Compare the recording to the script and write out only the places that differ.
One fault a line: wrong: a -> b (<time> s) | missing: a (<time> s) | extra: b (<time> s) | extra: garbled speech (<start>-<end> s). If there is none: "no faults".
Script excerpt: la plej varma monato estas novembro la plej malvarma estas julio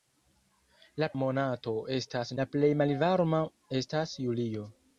missing: plej varma (1.1 s)
missing: novembro (2.3 s)